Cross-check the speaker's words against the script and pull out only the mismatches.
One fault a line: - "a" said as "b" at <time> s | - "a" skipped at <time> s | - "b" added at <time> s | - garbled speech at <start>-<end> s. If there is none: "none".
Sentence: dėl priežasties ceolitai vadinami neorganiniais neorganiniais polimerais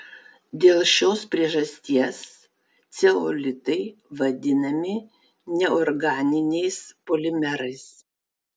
- "šios" added at 0.9 s
- "neorganiniais" skipped at 6.8 s